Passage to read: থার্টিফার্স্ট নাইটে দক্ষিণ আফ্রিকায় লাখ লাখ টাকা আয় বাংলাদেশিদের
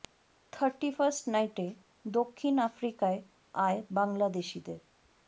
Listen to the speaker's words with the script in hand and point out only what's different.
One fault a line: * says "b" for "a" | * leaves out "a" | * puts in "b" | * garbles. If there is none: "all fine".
* leaves out "লাখ লাখ টাকা"